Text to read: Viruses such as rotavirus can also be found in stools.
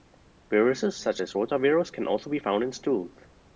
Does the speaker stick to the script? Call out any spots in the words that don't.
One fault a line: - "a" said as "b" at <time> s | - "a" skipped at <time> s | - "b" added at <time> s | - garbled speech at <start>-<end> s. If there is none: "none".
none